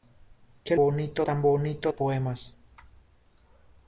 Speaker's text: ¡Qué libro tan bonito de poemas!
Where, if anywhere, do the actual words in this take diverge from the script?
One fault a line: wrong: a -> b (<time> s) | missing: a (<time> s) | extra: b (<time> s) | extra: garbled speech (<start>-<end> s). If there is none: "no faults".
wrong: libro -> bonito (0.8 s)
missing: de (1.9 s)